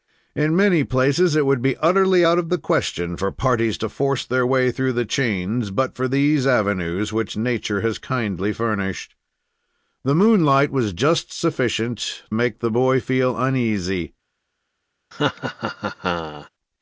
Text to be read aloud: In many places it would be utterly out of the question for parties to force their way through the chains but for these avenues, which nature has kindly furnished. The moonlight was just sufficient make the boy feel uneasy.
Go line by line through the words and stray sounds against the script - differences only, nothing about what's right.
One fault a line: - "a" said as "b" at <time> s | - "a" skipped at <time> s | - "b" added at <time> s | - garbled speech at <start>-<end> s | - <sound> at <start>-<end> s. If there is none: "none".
- laugh at 15.1-16.5 s